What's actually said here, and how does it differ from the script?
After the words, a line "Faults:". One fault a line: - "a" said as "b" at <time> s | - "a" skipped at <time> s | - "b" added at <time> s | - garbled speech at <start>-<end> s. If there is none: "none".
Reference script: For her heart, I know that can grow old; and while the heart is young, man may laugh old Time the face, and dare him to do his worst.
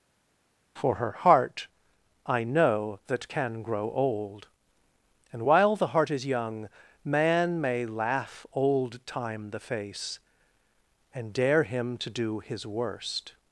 For her heart, I know that can grow old; and while the heart is young, man may laugh old Time the face, and dare him to do his worst.
Faults:
none